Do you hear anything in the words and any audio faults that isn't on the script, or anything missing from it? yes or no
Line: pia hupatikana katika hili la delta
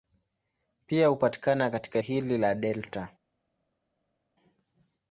no